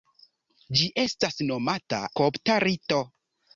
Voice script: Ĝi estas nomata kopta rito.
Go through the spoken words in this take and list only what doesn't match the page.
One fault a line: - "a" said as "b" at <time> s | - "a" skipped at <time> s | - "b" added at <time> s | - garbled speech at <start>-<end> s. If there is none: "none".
none